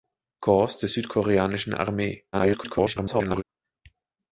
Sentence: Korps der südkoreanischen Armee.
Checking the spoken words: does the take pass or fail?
fail